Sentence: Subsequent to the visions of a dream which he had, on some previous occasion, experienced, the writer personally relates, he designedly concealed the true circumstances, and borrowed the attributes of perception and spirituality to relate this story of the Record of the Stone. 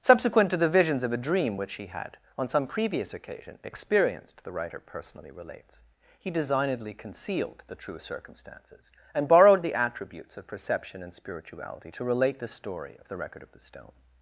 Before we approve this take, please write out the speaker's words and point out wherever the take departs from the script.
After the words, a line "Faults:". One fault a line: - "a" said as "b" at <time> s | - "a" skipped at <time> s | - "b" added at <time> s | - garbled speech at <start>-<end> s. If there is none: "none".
Subsequent to the visions of a dream which he had, on some previous occasion, experienced, the writer personally relates, he designedly concealed the true circumstances, and borrowed the attributes of perception and spirituality to relate the story of the Record of the Stone.
Faults:
- "this" said as "the" at 12.4 s